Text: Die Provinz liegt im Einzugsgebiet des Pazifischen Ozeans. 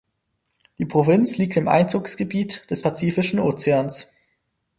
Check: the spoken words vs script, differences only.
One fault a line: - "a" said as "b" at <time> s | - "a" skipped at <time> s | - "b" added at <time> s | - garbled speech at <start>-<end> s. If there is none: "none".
none